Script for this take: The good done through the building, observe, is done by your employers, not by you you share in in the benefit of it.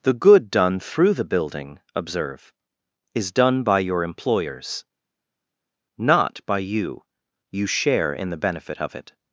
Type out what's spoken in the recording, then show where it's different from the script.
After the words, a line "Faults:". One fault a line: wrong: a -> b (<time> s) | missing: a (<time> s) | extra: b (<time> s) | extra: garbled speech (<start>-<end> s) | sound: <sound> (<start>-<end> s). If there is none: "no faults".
The good done through the building, observe, is done by your employers, not by you you share in the benefit of it.
Faults:
missing: in (8.3 s)